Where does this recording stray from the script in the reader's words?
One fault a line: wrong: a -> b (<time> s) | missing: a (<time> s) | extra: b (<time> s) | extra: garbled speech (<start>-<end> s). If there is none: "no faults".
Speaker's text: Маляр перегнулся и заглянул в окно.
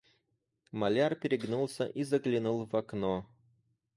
no faults